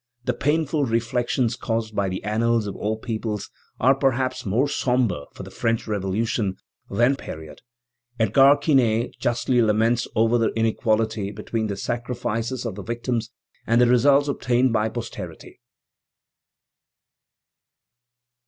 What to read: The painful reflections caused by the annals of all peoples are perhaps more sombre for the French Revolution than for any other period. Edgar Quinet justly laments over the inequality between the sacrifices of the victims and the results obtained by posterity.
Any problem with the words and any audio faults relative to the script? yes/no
yes